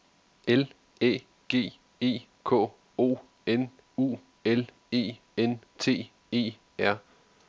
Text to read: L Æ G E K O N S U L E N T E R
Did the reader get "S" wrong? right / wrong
wrong